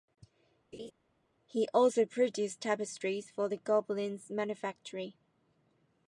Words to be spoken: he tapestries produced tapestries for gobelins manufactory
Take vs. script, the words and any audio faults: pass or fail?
fail